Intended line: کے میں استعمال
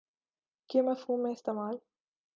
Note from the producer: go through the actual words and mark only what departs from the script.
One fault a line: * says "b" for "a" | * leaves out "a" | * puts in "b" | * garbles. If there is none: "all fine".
* puts in "مفہوم"